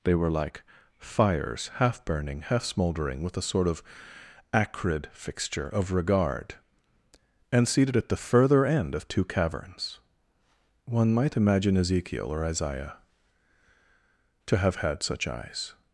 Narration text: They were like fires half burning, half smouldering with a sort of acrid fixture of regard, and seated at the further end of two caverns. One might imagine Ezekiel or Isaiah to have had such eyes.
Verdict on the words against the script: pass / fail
pass